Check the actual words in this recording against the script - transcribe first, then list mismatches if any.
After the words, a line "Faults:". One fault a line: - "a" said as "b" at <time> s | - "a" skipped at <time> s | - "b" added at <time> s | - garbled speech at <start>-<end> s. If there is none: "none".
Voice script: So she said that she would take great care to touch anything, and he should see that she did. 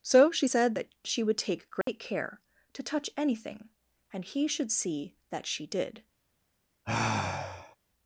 So she said that she would take great care to touch anything, and he should see that she did.
Faults:
none